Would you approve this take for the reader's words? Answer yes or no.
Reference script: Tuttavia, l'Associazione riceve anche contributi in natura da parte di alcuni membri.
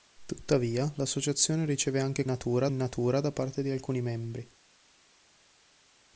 no